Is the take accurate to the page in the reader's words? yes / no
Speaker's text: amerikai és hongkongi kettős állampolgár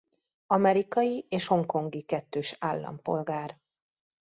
yes